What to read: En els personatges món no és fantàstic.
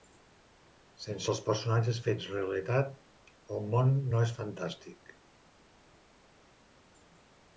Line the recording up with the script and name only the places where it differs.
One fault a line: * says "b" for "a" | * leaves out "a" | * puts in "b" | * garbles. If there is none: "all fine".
* says "Sense" for "En"
* puts in "fets realitat el"